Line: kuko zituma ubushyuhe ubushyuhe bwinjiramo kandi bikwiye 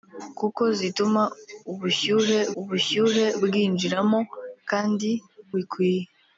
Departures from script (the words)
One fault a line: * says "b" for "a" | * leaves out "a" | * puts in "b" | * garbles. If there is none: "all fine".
all fine